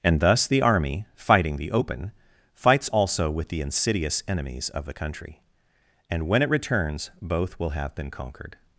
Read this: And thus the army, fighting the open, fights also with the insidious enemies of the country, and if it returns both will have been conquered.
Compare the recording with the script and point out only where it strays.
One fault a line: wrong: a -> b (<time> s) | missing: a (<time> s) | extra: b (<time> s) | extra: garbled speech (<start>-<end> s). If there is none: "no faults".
wrong: if -> when (6.3 s)